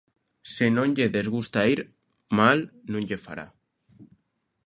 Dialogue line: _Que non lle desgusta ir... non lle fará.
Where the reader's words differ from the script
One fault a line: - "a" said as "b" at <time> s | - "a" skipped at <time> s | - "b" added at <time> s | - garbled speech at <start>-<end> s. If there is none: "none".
- "Que" said as "Se" at 0.5 s
- "mal" added at 2.4 s